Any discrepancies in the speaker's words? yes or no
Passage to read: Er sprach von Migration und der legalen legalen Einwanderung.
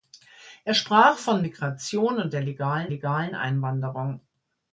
no